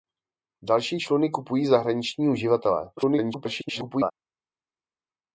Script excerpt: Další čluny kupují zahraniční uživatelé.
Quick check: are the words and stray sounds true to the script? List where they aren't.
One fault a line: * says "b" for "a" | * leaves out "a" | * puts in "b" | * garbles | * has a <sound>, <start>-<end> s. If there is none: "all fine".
* garbles